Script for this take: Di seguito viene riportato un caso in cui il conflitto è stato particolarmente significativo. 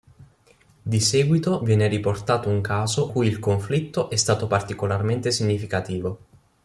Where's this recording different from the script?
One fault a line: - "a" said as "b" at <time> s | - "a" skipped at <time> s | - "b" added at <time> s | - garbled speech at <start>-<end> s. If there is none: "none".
- "in" skipped at 3.1 s